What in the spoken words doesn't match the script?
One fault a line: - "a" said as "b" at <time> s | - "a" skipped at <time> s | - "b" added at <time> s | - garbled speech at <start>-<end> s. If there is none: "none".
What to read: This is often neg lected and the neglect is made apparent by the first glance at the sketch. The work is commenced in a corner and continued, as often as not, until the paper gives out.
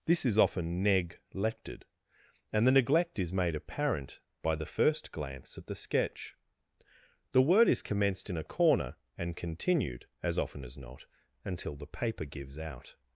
- "work" said as "word" at 7.4 s